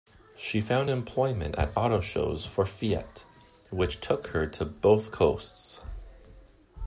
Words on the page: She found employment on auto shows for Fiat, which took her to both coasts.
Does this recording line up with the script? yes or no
no